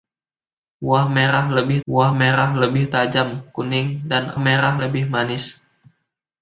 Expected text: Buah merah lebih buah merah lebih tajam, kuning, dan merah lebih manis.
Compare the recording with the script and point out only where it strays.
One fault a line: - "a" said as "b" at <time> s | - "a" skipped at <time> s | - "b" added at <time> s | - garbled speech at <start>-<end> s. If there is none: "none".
none